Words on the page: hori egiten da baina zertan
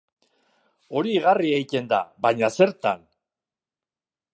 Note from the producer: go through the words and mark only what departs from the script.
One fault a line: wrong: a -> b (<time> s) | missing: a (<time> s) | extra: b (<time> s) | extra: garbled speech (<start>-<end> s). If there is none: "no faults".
extra: igarri (1.2 s)